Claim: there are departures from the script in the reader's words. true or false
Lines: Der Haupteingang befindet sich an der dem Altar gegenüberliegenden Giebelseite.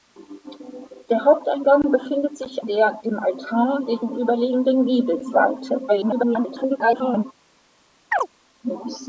true